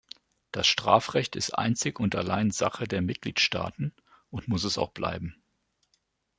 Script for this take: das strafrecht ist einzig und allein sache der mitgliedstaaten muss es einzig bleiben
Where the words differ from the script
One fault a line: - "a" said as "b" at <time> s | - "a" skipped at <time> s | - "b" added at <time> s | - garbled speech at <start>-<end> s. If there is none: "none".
- "und" added at 4.3 s
- "einzig" said as "auch" at 4.8 s